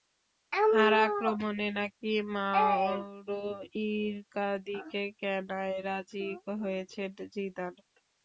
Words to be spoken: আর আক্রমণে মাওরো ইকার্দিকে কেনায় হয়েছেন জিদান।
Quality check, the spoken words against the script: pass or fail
fail